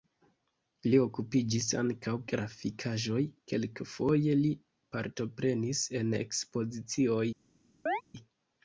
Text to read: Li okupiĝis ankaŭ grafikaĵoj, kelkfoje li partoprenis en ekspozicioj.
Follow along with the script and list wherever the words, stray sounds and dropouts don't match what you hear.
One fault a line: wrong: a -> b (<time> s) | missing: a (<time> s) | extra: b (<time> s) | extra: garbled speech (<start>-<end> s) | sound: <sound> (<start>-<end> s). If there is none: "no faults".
sound: chirp (7.9-8.0 s)